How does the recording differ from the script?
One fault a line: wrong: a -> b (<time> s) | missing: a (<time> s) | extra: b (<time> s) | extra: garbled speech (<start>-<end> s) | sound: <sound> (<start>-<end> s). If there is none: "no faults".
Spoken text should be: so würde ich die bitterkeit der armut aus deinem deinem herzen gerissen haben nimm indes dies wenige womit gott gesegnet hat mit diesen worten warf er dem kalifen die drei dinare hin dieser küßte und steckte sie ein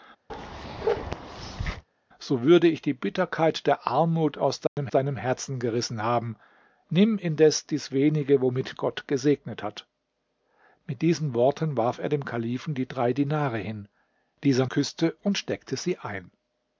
sound: bark (0.3-1.8 s)
sound: dropout (4.7-4.8 s)